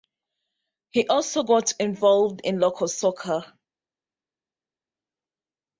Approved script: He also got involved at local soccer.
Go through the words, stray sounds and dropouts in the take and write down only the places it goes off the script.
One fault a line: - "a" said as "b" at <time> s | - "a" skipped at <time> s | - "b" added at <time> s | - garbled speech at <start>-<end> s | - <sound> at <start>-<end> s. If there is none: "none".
- "at" said as "in" at 2.4 s